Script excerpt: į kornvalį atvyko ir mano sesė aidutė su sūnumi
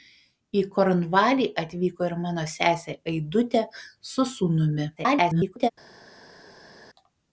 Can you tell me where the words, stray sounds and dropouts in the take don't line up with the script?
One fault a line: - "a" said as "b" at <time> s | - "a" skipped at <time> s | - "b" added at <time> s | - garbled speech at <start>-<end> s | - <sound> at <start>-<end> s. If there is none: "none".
- garbled speech at 5.0-5.7 s